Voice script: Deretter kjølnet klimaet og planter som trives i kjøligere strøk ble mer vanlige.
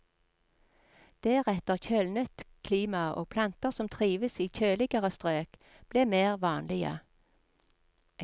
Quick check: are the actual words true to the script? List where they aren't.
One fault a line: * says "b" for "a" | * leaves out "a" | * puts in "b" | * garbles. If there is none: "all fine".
all fine